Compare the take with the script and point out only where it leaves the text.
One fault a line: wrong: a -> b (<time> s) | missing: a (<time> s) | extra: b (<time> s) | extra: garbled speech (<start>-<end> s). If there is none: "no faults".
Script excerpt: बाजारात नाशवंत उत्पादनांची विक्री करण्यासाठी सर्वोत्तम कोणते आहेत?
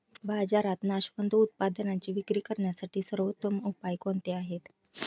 extra: उपाय (3.6 s)